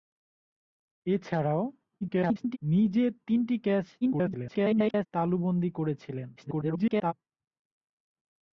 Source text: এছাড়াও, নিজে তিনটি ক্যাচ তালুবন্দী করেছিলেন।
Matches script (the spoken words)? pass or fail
fail